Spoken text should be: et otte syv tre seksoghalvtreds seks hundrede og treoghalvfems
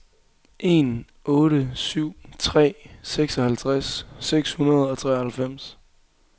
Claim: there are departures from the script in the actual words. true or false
true